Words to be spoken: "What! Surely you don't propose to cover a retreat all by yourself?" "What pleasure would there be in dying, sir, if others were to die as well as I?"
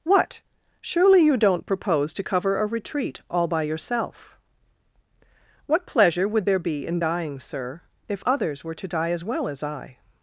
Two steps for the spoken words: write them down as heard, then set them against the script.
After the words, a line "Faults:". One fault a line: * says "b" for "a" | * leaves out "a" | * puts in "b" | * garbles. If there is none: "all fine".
"What! Surely you don't propose to cover a retreat all by yourself?" "What pleasure would there be in dying, sir, if others were to die as well as I?"
Faults:
all fine